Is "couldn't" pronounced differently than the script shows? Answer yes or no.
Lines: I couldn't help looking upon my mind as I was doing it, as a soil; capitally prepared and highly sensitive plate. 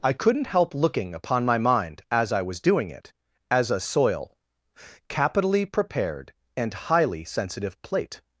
no